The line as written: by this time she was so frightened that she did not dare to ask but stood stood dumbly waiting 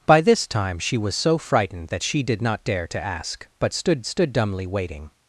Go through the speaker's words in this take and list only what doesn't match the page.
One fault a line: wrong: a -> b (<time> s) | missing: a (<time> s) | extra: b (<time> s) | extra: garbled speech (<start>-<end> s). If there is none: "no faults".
no faults